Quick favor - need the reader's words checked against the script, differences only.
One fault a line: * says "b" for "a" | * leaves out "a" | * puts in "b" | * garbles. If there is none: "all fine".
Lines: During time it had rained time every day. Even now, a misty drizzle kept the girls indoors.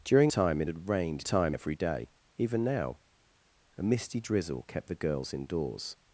all fine